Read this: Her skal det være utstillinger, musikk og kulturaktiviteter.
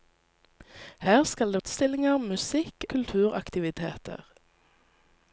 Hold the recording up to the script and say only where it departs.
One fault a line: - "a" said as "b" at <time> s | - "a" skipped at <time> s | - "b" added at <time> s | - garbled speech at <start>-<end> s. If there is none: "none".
- "være" skipped at 1.6 s
- "og" skipped at 2.9 s